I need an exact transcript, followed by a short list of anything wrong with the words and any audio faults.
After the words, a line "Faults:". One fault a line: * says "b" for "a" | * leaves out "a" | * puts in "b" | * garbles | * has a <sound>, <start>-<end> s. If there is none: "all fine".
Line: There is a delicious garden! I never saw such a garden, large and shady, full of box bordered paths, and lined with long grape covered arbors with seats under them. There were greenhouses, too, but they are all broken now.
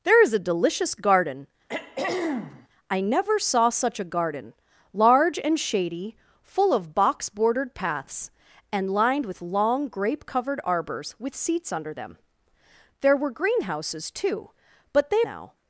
There is a delicious garden! I never saw such a garden, large and shady, full of box bordered paths, and lined with long grape covered arbors with seats under them. There were greenhouses, too, but they now.
Faults:
* has a throat clearing, 1.7-2.7 s
* leaves out "are all broken"